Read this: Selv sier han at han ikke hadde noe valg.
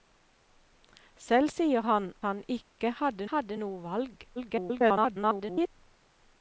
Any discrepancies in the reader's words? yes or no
yes